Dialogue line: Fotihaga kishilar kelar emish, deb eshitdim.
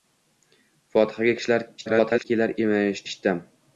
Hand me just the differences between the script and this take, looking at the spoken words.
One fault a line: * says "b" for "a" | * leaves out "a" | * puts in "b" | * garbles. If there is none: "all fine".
* garbles
* leaves out "deb"